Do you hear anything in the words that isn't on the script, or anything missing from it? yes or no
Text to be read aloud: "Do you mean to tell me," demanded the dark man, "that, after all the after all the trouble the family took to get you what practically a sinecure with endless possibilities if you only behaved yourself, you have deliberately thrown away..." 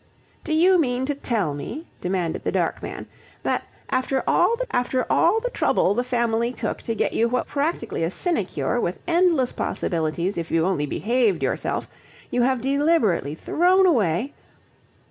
no